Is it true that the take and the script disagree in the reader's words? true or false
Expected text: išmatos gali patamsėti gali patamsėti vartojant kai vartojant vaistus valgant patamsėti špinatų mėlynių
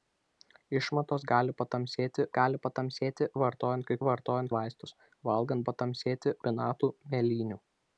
false